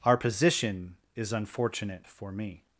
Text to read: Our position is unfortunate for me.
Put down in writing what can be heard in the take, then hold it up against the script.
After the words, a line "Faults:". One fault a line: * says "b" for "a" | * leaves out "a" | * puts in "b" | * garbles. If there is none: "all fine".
Our position is unfortunate for me.
Faults:
all fine